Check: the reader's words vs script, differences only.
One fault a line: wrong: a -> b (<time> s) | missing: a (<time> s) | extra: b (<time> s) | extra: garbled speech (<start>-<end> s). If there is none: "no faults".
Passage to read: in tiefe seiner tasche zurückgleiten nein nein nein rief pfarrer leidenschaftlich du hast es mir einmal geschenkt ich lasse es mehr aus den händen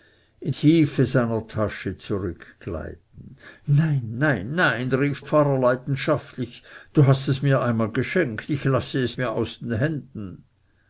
no faults